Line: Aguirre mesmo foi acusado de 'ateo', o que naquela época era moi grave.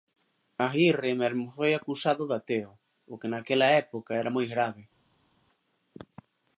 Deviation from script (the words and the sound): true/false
false